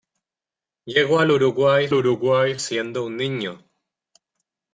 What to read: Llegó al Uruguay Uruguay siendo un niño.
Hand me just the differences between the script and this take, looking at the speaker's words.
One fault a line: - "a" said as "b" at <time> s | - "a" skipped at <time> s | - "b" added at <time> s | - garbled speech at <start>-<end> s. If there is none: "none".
none